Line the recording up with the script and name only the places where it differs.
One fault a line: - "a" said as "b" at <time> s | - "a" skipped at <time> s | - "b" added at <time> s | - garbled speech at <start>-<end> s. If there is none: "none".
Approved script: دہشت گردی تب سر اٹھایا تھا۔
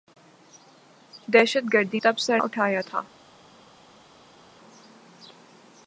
none